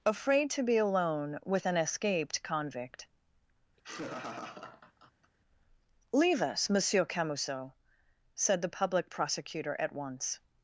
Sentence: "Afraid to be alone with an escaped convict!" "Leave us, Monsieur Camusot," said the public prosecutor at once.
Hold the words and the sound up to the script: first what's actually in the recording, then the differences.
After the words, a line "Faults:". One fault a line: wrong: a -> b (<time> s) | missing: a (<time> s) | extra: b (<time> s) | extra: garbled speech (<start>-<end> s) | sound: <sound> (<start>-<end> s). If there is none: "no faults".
"Afraid to be alone with an escaped convict!" "Leave us, Monsieur Camusot," said the public prosecutor at once.
Faults:
sound: laugh (3.8-5.3 s)